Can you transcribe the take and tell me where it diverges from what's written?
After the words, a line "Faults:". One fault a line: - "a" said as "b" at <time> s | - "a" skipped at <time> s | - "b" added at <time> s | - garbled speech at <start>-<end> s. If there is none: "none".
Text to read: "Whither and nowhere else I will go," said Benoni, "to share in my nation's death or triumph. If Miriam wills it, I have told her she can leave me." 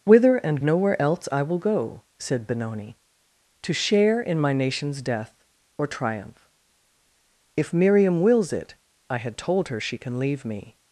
"Whither and nowhere else I will go," said Benoni, "to share in my nation's death or triumph. If Miriam wills it, I had told her she can leave me."
Faults:
- "have" said as "had" at 9.2 s